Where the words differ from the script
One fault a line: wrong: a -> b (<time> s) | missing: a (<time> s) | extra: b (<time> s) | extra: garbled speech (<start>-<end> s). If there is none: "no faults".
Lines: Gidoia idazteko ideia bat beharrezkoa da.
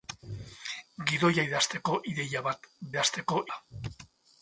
wrong: beharrezkoa -> idazteko (2.9 s)